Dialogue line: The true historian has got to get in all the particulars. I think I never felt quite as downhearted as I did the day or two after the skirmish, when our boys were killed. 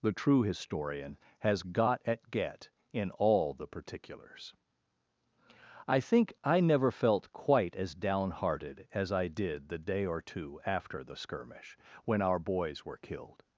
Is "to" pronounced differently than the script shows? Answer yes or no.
yes